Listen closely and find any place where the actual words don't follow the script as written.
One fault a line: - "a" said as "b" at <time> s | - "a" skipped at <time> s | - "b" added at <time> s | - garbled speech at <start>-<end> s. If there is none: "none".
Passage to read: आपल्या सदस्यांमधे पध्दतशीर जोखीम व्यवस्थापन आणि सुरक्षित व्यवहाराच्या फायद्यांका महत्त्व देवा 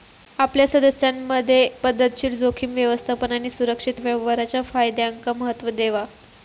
none